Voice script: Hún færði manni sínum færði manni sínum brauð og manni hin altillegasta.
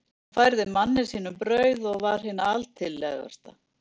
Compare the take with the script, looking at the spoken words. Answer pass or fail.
fail